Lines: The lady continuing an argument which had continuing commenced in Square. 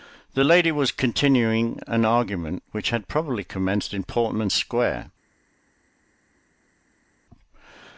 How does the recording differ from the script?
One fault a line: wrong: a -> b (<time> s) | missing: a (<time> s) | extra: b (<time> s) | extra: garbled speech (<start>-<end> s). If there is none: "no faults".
extra: was (0.7 s)
wrong: continuing -> probably (3.1 s)
extra: Portman (4.0 s)